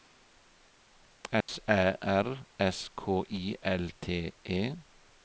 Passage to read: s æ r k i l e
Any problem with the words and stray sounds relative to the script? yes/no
yes